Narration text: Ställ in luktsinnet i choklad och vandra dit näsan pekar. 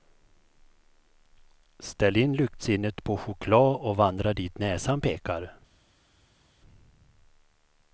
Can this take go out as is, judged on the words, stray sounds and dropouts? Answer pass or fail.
fail